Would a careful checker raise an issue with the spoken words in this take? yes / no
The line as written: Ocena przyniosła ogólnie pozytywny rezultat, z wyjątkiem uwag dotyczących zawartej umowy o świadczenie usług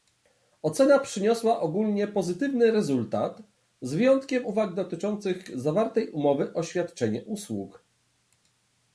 no